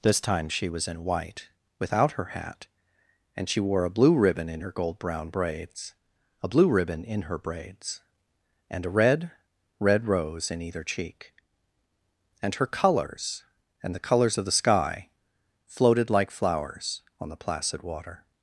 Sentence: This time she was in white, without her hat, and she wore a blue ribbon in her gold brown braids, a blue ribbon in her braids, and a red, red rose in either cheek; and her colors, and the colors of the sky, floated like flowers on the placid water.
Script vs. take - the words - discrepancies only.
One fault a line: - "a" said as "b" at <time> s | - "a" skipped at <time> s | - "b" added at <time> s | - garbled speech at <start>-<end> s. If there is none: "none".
none